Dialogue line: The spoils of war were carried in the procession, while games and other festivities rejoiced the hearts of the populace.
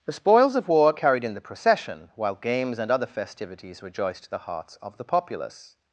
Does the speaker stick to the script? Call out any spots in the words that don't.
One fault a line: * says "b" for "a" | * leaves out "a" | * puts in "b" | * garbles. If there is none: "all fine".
* leaves out "were"